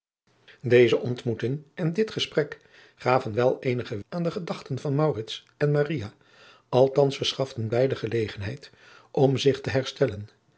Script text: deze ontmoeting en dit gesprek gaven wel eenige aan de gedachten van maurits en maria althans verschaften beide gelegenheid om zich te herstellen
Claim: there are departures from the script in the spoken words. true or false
false